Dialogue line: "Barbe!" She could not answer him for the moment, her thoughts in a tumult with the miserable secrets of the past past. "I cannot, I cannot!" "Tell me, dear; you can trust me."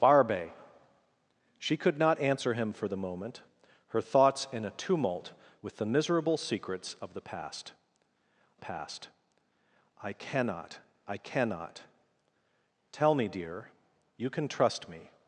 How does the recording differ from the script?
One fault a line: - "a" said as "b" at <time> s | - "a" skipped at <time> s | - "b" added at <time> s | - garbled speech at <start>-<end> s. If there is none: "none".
none